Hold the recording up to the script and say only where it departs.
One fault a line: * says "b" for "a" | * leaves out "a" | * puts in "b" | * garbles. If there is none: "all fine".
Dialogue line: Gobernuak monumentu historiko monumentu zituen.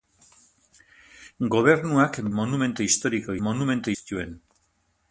all fine